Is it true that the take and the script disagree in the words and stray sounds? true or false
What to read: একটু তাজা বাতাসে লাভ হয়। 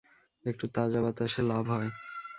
false